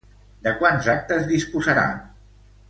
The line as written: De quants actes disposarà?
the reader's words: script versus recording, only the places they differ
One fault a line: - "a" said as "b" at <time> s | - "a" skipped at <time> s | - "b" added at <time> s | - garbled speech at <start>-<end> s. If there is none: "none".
none